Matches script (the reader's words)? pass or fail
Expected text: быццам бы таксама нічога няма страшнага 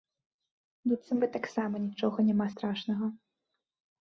pass